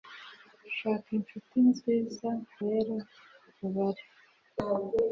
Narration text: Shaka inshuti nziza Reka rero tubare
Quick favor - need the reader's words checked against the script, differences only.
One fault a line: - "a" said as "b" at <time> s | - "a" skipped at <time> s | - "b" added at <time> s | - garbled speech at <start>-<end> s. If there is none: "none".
- "Reka" skipped at 2.3 s